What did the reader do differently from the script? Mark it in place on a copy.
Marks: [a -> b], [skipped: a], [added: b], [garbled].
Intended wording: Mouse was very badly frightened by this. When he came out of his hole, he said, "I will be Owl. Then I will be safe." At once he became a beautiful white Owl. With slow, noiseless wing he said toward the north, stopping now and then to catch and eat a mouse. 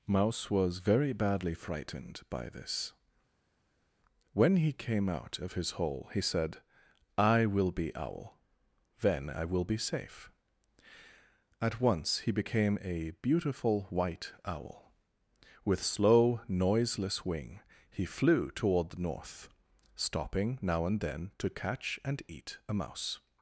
Mouse was very badly frightened by this. When he came out of his hole, he said, "I will be Owl. Then I will be safe." At once he became a beautiful white Owl. With slow, noiseless wing he [said -> flew] toward the north, stopping now and then to catch and eat a mouse.